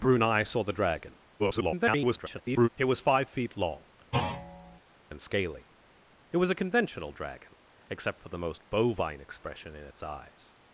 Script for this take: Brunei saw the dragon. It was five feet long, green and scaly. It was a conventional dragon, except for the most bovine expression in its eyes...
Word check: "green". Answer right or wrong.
wrong